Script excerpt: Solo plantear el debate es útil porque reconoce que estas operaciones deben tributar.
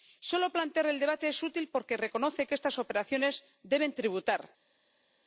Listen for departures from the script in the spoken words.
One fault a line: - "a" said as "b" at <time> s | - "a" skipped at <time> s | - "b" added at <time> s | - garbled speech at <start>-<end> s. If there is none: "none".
none